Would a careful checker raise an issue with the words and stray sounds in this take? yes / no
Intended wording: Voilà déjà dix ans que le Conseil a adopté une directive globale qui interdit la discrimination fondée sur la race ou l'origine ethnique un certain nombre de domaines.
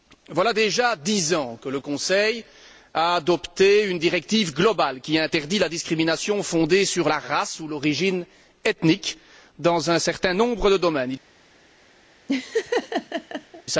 yes